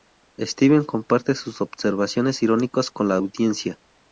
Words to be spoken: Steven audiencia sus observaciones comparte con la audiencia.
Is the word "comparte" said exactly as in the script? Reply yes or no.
no